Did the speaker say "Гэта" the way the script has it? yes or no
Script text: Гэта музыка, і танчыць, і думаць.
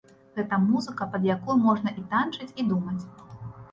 yes